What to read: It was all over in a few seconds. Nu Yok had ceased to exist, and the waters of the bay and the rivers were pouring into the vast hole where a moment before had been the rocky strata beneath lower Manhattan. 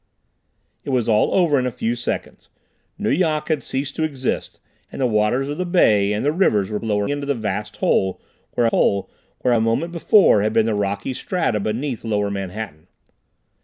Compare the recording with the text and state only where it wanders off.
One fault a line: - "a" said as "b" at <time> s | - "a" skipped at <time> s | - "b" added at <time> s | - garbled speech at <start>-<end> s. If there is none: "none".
- "pouring" said as "lower" at 6.8 s
- "hole where" added at 8.7 s